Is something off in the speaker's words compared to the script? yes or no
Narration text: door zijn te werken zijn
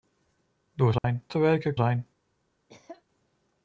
no